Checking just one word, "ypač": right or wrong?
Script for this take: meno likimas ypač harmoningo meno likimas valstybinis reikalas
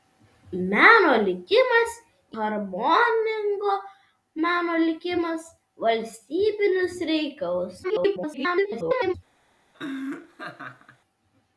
wrong